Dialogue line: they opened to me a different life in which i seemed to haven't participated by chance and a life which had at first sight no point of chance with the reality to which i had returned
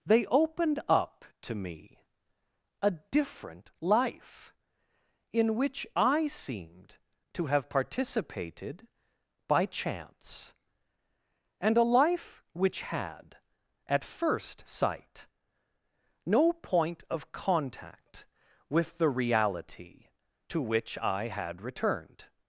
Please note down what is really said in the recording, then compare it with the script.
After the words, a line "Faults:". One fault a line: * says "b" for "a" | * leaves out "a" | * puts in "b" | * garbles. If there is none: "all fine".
they opened up to me a different life in which i seemed to have participated by chance and a life which had at first sight no point of contact with the reality to which i had returned
Faults:
* puts in "up"
* says "have" for "haven't"
* says "contact" for "chance"